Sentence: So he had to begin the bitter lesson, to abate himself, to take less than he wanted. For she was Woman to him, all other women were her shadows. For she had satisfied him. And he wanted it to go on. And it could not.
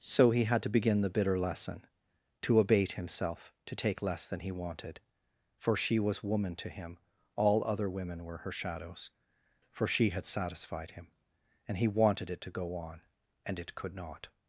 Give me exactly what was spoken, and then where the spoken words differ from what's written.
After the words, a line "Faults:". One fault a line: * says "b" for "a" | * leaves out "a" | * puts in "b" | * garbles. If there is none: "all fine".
So he had to begin the bitter lesson, to abate himself, to take less than he wanted. For she was Woman to him, all other women were her shadows. For she had satisfied him. And he wanted it to go on. And it could not.
Faults:
all fine